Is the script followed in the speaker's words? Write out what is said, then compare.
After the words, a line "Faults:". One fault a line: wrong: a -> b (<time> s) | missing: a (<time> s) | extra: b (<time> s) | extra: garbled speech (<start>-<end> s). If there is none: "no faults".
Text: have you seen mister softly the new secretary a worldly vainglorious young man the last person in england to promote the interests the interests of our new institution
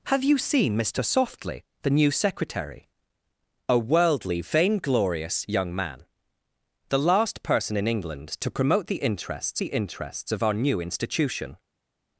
have you seen mister softly the new secretary a worldly vainglorious young man the last person in england to promote the interests the interests of our new institution
Faults:
no faults